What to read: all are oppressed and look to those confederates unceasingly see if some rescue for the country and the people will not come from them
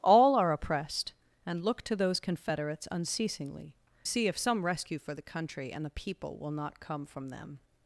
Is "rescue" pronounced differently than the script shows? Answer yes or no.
no